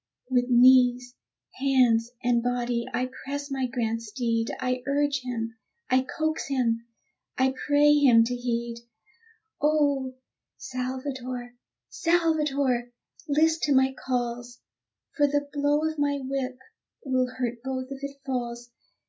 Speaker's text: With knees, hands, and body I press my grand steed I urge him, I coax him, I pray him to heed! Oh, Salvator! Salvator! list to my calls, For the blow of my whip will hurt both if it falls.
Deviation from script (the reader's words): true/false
false